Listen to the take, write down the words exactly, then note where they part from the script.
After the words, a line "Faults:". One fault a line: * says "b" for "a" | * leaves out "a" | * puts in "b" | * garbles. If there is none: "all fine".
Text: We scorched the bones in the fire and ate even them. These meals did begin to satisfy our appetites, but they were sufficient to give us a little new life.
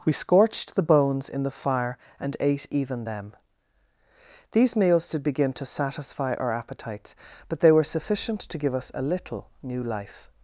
We scorched the bones in the fire and ate even them. These meals did begin to satisfy our appetites, but they were sufficient to give us a little new life.
Faults:
all fine